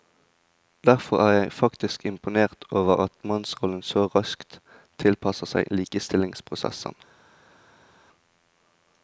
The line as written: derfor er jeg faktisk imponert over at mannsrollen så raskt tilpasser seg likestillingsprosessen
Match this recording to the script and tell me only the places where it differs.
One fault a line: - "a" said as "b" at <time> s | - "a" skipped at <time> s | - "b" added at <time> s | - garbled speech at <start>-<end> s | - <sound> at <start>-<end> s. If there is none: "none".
none